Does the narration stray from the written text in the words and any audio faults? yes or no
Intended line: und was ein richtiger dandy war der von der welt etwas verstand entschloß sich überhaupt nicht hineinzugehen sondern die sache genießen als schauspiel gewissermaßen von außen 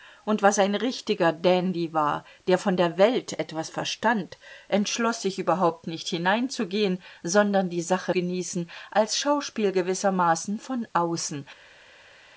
no